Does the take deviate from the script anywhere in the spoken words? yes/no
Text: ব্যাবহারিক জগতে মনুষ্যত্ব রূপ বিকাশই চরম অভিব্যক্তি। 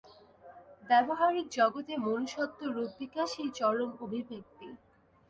no